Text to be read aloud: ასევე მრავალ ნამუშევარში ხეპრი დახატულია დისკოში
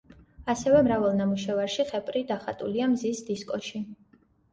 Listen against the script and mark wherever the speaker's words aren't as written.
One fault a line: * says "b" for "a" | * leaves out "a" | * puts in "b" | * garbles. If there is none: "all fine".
* puts in "მზის"